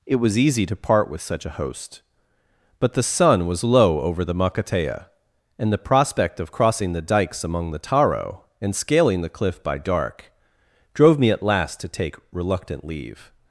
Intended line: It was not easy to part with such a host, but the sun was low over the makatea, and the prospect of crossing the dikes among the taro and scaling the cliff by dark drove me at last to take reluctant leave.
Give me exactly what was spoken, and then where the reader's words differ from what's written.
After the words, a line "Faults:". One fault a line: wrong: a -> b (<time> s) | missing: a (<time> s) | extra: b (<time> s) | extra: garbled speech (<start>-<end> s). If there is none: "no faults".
It was easy to part with such a host, but the sun was low over the makatea, and the prospect of crossing the dikes among the taro and scaling the cliff by dark drove me at last to take reluctant leave.
Faults:
missing: not (0.4 s)